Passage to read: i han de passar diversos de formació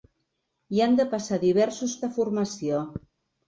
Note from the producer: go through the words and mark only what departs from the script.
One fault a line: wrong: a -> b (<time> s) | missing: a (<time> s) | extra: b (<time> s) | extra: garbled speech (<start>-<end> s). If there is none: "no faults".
no faults